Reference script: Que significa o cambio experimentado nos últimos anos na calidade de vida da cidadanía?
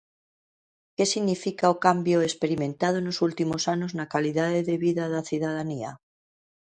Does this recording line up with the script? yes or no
yes